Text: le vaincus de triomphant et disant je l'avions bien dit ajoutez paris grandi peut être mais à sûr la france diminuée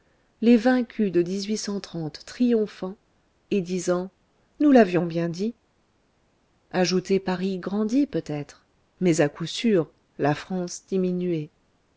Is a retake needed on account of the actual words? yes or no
yes